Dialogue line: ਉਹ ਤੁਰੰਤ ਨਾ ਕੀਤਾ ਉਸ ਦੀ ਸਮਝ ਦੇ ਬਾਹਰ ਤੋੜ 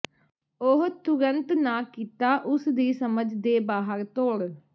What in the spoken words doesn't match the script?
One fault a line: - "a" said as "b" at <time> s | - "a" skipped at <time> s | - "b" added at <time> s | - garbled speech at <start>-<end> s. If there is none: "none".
none